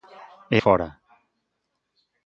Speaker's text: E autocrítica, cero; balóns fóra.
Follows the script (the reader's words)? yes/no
no